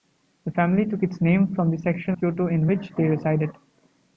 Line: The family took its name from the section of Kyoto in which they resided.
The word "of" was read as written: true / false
false